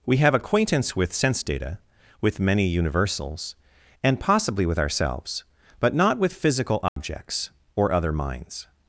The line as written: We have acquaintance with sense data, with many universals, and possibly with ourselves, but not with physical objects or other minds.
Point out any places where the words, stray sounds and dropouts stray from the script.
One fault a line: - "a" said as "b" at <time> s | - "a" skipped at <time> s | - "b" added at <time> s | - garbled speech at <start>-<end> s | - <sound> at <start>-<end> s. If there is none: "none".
- dropout at 6.9-7.0 s